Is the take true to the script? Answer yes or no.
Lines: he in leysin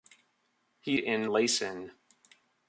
yes